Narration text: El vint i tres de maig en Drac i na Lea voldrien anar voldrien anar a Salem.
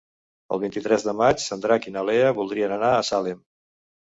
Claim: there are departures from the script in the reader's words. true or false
true